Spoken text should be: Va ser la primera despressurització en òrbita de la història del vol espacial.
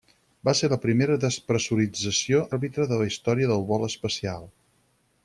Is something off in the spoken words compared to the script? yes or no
yes